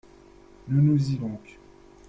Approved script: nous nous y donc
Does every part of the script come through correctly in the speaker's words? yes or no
yes